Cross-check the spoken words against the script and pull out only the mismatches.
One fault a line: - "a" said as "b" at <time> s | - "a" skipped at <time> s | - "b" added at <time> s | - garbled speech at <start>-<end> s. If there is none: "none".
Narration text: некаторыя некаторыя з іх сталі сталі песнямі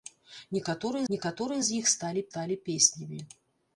none